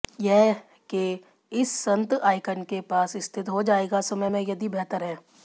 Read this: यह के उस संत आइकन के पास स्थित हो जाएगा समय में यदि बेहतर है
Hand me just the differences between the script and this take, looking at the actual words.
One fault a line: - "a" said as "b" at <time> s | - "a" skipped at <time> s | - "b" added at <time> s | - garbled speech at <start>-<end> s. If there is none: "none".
- "उस" said as "इस" at 1.5 s